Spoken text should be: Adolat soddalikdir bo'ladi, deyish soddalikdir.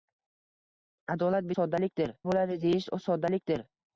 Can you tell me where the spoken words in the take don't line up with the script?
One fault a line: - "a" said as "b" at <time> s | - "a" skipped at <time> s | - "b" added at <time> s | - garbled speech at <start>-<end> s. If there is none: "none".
none